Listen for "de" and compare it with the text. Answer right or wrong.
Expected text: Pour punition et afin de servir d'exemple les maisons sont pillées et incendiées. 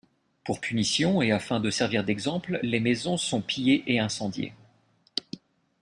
right